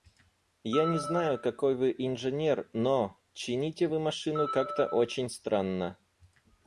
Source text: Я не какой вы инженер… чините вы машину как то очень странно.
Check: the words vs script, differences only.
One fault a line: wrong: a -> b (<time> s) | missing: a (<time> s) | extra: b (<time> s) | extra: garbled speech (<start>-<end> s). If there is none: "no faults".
extra: знаю (1.0 s)
extra: но (2.7 s)